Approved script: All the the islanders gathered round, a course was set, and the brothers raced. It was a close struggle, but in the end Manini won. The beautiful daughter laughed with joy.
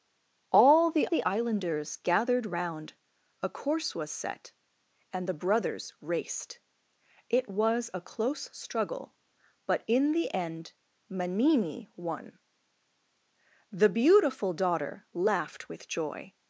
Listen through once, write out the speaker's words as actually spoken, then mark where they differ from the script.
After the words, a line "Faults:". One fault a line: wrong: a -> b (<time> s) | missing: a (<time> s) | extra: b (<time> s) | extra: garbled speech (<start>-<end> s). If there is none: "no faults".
All the the islanders gathered round, a course was set, and the brothers raced. It was a close struggle, but in the end Manini won. The beautiful daughter laughed with joy.
Faults:
no faults